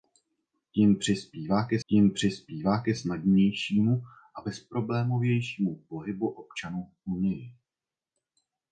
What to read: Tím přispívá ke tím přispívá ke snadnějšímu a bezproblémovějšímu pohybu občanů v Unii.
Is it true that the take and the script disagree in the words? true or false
false